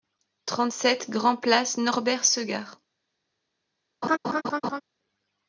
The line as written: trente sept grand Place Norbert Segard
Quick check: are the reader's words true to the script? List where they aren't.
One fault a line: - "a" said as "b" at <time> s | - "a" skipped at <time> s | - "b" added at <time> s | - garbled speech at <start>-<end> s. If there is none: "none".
none